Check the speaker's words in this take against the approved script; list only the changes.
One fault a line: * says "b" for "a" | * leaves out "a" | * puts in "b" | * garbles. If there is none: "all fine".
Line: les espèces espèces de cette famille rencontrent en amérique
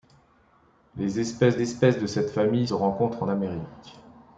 all fine